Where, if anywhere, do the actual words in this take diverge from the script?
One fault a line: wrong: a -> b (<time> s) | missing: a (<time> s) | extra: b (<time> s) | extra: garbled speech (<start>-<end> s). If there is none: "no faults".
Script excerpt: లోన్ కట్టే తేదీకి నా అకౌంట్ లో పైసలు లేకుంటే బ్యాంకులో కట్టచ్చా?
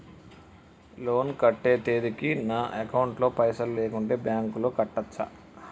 no faults